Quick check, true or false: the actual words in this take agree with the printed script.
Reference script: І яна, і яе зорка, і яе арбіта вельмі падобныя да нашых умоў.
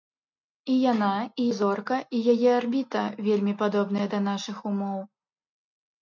false